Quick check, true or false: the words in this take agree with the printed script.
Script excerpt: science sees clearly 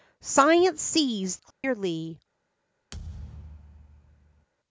true